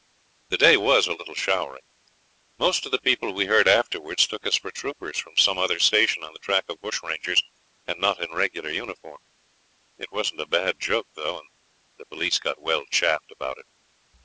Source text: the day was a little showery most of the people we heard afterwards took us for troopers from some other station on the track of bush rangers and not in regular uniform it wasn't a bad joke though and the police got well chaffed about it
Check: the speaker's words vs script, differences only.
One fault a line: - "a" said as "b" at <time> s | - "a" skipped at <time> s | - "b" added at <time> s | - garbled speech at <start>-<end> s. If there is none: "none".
none